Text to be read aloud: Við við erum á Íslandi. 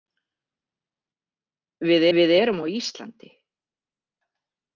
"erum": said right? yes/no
yes